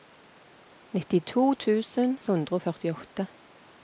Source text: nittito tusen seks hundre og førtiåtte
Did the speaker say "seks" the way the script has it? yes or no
no